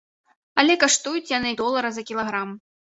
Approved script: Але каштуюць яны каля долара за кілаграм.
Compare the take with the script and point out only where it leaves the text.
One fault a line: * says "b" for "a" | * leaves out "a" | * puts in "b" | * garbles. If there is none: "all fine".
* leaves out "каля"